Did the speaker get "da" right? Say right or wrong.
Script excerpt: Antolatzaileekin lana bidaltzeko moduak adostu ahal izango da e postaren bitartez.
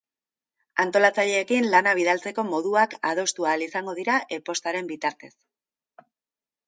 wrong